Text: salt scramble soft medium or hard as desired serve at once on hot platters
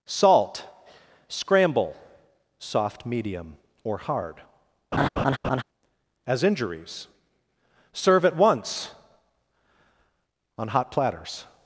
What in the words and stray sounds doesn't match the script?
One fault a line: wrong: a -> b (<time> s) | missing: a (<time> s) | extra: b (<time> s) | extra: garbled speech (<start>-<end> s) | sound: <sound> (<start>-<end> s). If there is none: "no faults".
sound: laugh (4.9-5.6 s)
wrong: desired -> injuries (6.4 s)